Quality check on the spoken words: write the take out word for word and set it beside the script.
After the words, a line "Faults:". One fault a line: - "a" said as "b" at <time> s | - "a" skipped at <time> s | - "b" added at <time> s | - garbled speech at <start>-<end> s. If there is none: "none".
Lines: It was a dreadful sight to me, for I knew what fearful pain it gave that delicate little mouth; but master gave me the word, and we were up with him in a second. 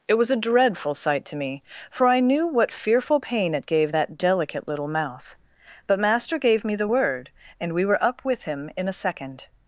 It was a dreadful sight to me, for I knew what fearful pain it gave that delicate little mouth; but master gave me the word, and we were up with him in a second.
Faults:
none